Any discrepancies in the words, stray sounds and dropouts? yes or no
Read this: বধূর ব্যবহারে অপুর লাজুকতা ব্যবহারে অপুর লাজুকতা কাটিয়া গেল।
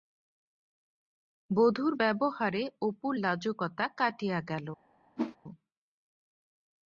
yes